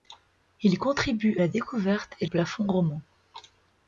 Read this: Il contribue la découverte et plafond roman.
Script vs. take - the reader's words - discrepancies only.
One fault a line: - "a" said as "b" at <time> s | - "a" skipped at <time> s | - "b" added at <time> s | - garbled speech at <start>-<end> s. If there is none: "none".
none